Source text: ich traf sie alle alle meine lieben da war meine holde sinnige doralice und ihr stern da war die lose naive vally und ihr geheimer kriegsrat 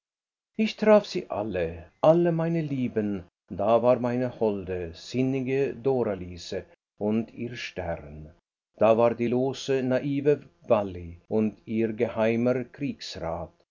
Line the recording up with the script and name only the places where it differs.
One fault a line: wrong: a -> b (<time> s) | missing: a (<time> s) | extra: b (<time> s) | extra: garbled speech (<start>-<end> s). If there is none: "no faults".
no faults